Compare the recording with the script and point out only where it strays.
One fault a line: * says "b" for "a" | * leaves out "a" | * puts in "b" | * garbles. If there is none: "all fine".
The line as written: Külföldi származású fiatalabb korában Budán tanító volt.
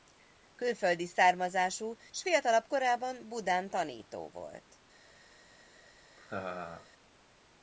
* puts in "s"